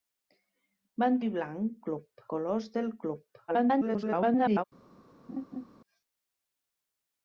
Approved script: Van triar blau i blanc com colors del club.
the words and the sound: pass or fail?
fail